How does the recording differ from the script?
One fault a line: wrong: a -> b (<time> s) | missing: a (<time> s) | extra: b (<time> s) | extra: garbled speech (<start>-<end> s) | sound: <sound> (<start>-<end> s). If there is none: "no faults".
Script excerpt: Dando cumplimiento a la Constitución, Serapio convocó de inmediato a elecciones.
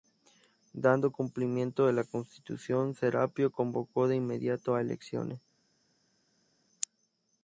no faults